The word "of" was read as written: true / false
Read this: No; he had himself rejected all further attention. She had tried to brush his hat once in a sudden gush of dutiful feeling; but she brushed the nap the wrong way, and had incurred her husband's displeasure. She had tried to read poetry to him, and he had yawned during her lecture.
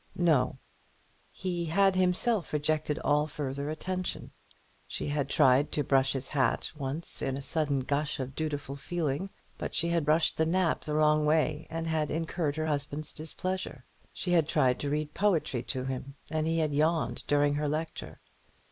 true